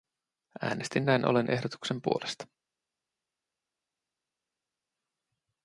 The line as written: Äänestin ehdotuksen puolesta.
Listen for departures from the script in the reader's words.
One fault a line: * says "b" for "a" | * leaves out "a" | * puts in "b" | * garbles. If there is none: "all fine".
* puts in "näin ollen"